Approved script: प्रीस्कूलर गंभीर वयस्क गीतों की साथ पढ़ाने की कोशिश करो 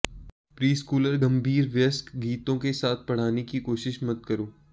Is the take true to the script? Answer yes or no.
no